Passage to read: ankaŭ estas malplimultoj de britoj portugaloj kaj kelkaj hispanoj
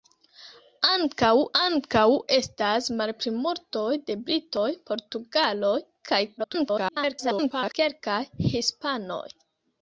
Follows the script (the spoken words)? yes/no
no